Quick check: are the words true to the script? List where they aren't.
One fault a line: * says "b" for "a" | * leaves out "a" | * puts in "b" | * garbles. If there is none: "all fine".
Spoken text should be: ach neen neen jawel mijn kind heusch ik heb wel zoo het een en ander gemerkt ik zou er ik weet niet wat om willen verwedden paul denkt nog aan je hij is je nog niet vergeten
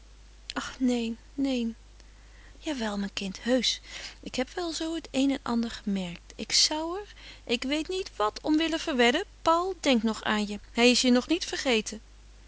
all fine